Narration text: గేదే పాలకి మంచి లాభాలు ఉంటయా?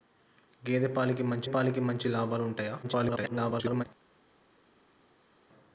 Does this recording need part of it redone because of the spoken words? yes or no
yes